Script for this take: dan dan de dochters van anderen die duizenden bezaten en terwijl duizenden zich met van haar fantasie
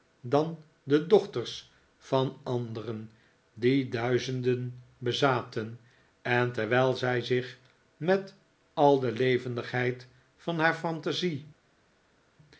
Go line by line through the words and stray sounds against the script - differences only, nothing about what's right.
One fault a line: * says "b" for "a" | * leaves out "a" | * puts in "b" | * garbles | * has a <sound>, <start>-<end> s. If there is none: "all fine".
* leaves out "dan"
* says "zij" for "duizenden"
* puts in "al de levendigheid"